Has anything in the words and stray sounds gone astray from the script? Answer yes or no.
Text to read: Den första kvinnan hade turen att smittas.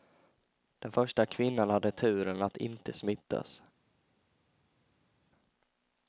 yes